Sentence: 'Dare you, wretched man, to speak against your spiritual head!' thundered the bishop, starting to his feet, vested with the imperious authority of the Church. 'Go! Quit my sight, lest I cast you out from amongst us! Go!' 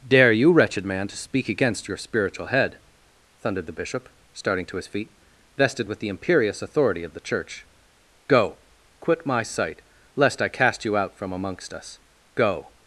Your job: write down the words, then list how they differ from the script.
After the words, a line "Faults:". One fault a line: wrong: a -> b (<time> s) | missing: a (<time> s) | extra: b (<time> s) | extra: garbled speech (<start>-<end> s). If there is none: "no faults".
'Dare you, wretched man, to speak against your spiritual head!' thundered the bishop, starting to his feet, vested with the imperious authority of the Church. 'Go! Quit my sight, lest I cast you out from amongst us! Go!'
Faults:
no faults